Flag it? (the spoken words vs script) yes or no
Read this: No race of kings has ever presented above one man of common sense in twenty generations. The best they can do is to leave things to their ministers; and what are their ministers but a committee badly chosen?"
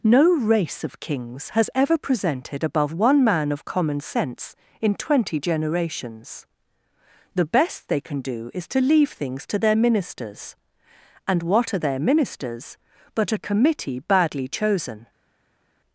no